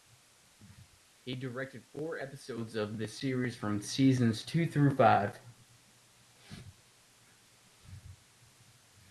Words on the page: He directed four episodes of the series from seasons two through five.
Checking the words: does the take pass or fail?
pass